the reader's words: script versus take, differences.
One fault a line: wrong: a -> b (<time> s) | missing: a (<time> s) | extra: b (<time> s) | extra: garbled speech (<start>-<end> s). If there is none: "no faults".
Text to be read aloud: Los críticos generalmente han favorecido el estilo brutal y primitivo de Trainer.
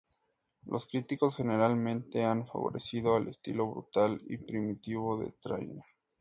no faults